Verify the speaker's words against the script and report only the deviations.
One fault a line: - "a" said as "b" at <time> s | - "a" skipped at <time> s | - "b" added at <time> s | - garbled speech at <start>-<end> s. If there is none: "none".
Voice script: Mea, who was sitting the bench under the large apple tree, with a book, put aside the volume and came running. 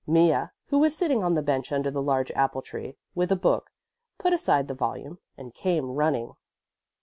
- "on" added at 1.2 s